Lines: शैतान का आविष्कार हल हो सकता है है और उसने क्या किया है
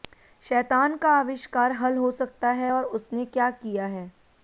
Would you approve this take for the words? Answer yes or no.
no